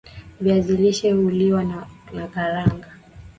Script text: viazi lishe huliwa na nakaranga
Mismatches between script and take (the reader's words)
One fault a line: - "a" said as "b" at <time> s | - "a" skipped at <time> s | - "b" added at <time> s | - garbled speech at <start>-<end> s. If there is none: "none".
none